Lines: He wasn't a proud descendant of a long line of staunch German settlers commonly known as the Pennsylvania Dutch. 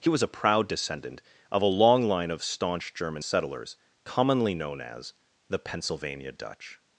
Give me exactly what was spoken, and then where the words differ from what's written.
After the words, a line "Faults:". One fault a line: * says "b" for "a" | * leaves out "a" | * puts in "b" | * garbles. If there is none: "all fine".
He was a proud descendant of a long line of staunch German settlers commonly known as the Pennsylvania Dutch.
Faults:
* says "was" for "wasn't"